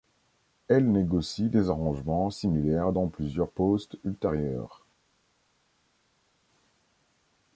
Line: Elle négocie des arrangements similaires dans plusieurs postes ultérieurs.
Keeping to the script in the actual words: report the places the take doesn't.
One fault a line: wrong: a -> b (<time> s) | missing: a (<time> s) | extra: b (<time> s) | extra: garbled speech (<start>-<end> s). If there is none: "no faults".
no faults